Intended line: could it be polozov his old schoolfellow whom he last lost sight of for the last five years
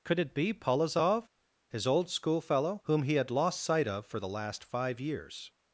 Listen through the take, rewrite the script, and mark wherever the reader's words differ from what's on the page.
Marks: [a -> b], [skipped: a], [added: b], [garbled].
could it be polozov his old schoolfellow whom he [last -> had] lost sight of for the last five years